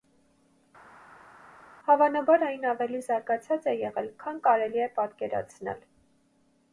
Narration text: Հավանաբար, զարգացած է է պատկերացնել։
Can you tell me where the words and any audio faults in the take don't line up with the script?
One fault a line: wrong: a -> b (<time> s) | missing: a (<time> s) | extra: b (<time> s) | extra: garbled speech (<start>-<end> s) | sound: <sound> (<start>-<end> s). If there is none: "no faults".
extra: այն ավելի (2.5 s)
extra: եղել քան կարելի (3.8 s)